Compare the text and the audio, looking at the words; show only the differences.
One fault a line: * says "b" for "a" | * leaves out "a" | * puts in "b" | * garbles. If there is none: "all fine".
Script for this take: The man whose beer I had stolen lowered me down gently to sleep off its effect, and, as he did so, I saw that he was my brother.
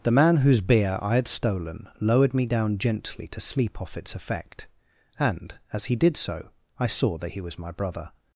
all fine